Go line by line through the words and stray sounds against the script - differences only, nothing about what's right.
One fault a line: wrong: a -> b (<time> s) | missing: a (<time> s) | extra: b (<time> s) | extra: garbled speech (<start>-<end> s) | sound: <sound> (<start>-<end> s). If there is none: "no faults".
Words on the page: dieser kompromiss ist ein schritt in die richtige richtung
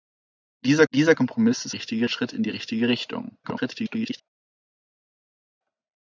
extra: dieser (0.9 s)
wrong: ein -> richtige (1.7 s)
extra: garbled speech (3.4-4.2 s)